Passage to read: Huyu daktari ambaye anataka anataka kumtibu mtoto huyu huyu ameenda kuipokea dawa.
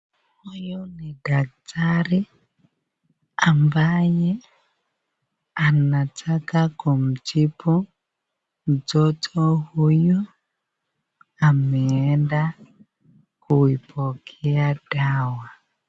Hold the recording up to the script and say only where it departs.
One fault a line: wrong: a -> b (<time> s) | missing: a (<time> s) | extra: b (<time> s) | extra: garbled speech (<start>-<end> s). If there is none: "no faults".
extra: ni (0.8 s)
missing: anataka (6.7 s)
missing: huyu (10.3 s)